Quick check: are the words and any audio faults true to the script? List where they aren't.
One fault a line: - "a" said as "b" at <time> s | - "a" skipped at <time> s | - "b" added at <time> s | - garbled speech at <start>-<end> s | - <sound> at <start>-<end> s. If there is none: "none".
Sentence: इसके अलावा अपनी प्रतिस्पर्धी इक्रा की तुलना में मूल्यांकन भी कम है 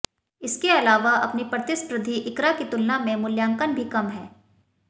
none